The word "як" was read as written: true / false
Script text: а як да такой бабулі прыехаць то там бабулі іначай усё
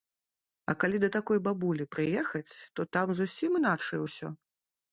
false